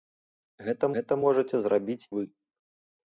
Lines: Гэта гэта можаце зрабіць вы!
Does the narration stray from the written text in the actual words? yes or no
no